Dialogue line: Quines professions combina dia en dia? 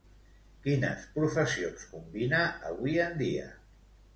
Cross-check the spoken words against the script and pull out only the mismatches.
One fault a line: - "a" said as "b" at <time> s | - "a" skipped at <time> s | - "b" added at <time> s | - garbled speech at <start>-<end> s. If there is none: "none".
- "dia" said as "avui" at 2.7 s